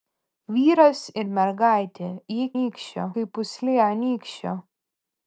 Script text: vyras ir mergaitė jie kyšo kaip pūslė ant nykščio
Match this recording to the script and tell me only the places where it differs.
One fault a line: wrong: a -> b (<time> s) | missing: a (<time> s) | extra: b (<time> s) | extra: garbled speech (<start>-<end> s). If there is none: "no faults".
wrong: kyšo -> nykščio (2.6 s)